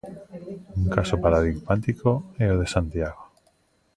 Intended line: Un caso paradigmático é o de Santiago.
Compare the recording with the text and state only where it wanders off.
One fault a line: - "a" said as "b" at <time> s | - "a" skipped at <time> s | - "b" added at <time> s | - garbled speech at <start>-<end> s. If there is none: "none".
none